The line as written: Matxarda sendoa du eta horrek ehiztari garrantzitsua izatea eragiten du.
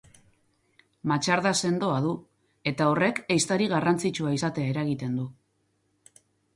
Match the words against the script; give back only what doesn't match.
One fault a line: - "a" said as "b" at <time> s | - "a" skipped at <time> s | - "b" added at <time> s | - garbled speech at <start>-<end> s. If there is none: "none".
none